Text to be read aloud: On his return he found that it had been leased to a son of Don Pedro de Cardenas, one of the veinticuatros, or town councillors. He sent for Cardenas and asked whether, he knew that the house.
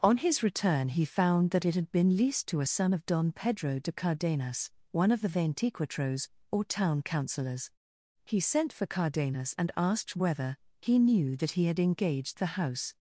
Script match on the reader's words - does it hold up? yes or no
no